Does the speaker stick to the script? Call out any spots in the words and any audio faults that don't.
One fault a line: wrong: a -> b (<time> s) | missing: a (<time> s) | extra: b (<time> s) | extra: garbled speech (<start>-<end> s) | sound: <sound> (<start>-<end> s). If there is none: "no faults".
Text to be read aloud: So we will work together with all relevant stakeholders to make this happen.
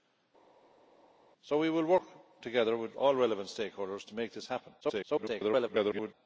extra: garbled speech (4.8-6.1 s)